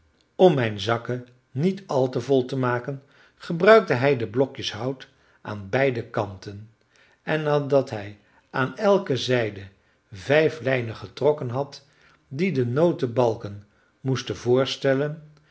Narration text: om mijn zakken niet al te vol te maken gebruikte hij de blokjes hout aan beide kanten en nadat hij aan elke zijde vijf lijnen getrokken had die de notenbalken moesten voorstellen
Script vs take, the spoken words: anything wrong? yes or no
no